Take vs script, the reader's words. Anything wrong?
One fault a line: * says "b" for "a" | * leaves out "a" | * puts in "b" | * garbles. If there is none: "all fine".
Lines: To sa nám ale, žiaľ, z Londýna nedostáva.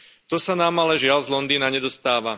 all fine